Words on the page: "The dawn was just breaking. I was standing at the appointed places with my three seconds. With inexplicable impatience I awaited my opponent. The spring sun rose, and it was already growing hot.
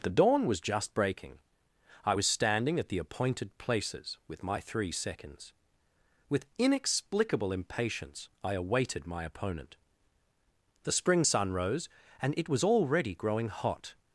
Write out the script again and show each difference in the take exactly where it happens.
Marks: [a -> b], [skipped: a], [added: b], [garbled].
"The dawn was just breaking. I was standing at the appointed places with my three seconds. With inexplicable impatience I awaited my opponent. The spring sun rose, and it was already growing hot.